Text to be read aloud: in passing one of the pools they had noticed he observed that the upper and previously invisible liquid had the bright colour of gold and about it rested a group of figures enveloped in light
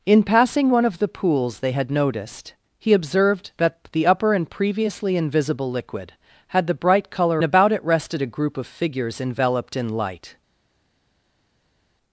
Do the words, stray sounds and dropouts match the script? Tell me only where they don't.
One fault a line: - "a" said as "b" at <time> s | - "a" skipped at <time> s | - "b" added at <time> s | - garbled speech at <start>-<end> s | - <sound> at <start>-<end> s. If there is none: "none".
- "of gold and" skipped at 7.4 s